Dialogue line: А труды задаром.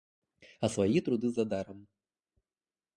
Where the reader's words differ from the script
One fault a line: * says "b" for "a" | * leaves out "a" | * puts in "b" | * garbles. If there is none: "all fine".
* puts in "свои"